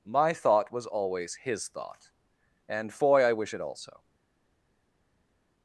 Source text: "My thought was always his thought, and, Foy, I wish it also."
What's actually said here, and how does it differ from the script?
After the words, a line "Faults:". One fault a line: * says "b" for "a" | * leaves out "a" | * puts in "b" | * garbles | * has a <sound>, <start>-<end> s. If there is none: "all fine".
"My thought was always his thought, and, Foy, I wish it also."
Faults:
all fine